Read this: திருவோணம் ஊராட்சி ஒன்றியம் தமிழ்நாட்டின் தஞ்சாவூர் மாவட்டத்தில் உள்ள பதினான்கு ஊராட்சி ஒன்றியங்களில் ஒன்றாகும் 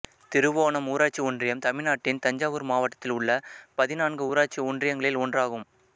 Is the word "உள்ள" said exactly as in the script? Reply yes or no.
yes